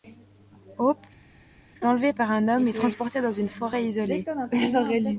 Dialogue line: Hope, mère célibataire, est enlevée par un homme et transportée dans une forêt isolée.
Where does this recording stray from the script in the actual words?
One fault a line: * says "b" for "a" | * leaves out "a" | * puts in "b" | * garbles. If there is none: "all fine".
* leaves out "mère célibataire est"